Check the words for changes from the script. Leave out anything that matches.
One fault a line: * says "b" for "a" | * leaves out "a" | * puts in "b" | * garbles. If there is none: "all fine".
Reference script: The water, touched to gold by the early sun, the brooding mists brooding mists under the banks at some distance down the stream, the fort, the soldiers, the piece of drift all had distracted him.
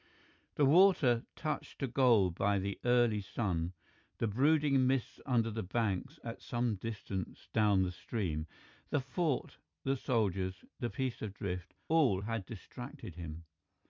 * leaves out "brooding mists"